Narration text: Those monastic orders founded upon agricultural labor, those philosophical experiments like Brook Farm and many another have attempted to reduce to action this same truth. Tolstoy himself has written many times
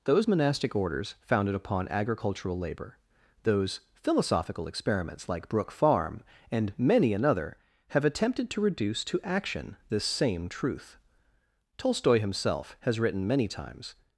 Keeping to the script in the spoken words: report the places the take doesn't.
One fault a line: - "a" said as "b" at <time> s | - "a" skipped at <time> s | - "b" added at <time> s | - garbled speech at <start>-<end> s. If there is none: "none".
none